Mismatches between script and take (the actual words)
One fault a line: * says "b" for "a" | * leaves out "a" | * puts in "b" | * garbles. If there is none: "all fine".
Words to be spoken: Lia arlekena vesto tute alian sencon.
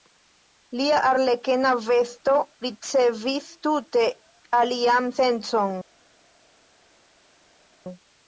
* puts in "ricevis"